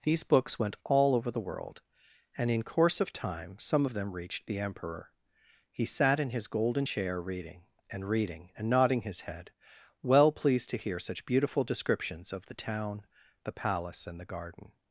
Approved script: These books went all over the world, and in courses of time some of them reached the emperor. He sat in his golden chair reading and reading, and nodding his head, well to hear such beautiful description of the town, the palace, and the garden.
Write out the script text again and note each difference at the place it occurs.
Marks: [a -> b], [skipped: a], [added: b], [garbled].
These books went all over the world, and in [courses -> course] of time some of them reached the emperor. He sat in his golden chair reading and reading, and nodding his head, well [added: pleased] to hear such beautiful [description -> descriptions] of the town, the palace, and the garden.